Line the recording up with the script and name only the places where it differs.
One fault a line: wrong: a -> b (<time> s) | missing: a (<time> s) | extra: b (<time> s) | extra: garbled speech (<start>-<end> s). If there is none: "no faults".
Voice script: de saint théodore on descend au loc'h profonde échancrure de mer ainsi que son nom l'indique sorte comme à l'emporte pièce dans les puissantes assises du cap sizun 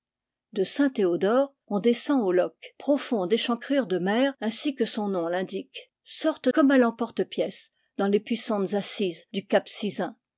no faults